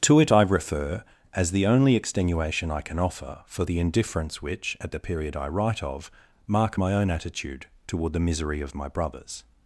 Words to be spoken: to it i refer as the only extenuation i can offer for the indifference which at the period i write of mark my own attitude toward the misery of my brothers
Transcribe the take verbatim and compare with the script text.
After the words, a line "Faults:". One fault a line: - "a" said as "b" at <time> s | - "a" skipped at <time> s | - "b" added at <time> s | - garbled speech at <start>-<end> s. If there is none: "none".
to it i refer as the only extenuation i can offer for the indifference which at the period i write of mark my own attitude toward the misery of my brothers
Faults:
none